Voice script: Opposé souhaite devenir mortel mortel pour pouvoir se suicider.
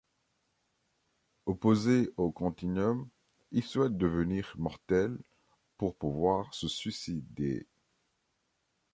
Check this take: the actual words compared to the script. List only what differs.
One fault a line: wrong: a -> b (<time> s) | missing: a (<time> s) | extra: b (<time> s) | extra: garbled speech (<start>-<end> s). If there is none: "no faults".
extra: au Continuum il (2.2 s)
missing: mortel (5.2 s)